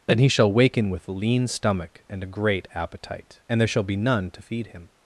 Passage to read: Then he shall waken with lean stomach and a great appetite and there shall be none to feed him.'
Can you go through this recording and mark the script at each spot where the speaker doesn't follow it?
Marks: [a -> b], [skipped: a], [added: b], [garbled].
Then he shall waken with lean stomach and a great appetite and there shall be none to feed him.'